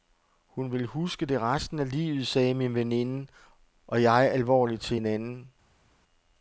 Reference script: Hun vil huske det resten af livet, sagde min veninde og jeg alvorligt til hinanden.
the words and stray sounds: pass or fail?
pass